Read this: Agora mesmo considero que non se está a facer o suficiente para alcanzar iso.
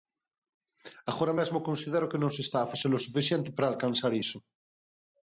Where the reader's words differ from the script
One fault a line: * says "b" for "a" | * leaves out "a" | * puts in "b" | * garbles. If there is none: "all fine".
all fine